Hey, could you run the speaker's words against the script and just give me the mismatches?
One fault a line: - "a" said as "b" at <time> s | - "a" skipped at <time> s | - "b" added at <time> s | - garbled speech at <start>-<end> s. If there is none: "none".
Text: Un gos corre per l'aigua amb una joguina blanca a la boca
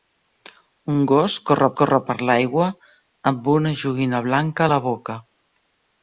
- "corre" added at 1.8 s